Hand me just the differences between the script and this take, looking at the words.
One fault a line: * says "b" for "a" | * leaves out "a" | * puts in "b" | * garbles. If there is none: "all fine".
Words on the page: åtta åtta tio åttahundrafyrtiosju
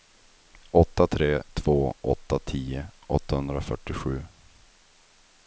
* puts in "tre två"